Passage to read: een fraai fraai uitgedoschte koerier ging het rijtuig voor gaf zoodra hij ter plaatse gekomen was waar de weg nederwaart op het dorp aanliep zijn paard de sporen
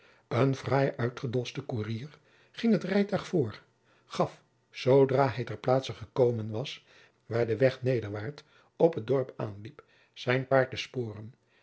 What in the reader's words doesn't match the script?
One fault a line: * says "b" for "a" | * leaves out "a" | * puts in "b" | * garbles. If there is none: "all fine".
* leaves out "fraai"